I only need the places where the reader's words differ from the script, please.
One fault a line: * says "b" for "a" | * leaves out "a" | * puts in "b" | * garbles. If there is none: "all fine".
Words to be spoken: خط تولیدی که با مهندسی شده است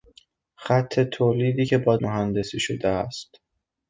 all fine